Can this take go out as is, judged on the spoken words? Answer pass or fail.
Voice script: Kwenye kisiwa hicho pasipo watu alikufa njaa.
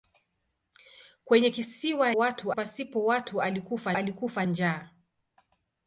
fail